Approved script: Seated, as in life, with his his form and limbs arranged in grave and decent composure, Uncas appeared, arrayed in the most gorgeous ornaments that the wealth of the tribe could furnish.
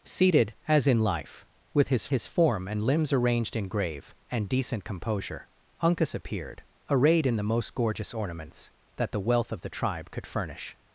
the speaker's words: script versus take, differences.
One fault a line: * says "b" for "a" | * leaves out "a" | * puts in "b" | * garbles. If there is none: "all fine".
all fine